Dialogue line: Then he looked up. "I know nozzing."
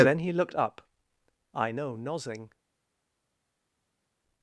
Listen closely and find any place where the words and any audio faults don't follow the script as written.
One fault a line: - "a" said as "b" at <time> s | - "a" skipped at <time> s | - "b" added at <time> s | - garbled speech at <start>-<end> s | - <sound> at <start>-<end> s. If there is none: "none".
none